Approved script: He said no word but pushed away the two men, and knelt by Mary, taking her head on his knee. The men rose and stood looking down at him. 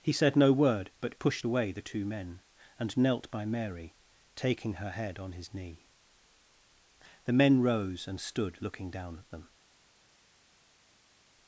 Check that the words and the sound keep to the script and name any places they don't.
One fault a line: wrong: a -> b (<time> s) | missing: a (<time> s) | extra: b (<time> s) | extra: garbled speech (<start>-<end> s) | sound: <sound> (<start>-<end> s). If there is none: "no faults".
wrong: him -> them (9.3 s)